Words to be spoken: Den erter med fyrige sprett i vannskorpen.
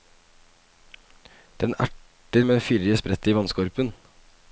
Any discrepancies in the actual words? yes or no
no